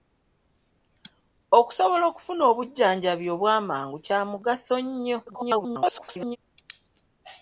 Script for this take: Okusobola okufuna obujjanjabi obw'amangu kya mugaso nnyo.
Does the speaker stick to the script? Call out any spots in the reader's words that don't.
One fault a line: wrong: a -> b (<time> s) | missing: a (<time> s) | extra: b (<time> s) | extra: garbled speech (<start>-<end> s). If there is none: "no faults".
extra: garbled speech (5.3-6.4 s)